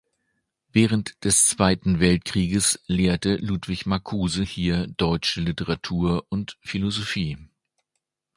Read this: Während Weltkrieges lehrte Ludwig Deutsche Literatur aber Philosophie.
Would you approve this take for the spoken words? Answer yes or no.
no